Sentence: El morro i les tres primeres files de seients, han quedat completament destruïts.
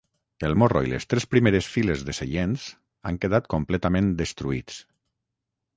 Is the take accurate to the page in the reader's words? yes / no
yes